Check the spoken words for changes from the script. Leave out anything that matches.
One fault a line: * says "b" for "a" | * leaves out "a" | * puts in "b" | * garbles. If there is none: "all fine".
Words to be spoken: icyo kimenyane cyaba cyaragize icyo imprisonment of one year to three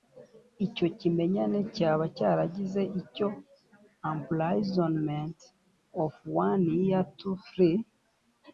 all fine